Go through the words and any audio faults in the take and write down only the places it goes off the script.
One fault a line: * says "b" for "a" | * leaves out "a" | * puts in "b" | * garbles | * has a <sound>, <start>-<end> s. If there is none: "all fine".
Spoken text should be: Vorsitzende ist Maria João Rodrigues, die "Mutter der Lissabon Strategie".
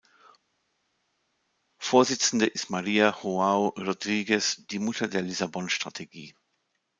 all fine